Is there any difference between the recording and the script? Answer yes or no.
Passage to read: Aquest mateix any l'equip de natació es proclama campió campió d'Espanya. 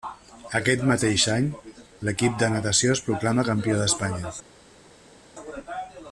yes